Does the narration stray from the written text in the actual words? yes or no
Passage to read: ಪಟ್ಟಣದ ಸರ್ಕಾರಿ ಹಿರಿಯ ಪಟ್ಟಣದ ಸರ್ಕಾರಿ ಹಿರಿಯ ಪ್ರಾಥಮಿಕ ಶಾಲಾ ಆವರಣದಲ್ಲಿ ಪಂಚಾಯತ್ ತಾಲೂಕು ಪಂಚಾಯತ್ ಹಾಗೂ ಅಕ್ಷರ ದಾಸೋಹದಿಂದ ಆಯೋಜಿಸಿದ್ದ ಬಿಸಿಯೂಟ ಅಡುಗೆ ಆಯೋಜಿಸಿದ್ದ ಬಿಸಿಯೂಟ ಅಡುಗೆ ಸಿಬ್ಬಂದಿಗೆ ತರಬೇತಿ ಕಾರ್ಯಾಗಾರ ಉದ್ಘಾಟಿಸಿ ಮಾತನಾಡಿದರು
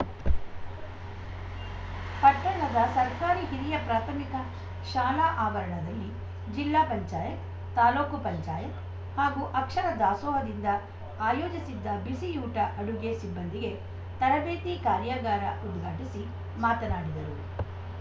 yes